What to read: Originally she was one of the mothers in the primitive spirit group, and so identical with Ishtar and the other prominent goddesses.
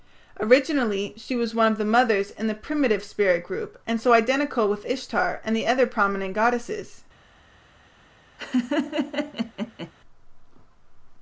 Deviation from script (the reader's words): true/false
false